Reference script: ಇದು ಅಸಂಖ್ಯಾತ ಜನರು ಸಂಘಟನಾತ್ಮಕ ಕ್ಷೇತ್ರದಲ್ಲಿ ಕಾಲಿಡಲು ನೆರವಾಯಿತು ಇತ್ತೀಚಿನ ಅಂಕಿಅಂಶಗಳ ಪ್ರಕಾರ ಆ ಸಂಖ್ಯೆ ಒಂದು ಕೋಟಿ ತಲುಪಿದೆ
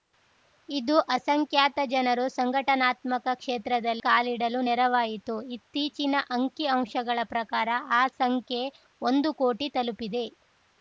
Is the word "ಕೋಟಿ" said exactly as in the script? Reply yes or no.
yes